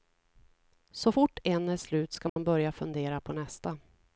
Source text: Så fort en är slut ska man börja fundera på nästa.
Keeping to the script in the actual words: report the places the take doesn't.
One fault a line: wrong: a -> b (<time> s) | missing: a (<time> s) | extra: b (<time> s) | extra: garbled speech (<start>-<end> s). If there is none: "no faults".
no faults